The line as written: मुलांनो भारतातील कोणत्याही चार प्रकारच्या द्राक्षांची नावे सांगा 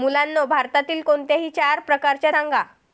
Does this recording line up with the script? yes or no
no